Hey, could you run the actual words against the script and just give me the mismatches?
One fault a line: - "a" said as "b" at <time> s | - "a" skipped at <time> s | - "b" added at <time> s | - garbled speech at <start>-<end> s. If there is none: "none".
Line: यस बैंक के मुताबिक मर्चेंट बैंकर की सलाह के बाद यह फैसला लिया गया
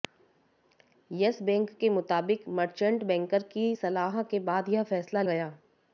- "लिया" skipped at 5.2 s